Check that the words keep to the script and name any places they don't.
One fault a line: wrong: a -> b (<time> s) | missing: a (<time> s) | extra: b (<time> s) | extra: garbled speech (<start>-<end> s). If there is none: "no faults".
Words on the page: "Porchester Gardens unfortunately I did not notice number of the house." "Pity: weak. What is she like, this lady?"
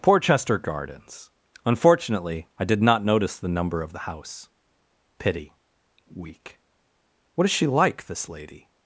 extra: the (3.4 s)